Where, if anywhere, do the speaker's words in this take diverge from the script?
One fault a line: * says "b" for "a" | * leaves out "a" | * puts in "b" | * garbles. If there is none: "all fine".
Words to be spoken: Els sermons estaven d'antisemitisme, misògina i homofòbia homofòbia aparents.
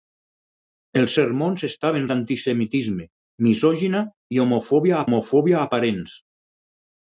all fine